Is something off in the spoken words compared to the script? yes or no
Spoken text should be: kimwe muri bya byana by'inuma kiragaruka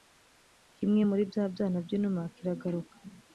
no